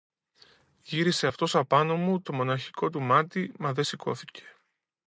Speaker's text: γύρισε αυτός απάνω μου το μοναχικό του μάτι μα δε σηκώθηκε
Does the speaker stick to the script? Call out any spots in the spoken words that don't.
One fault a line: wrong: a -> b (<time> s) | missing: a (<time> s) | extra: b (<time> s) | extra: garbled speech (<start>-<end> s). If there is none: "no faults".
no faults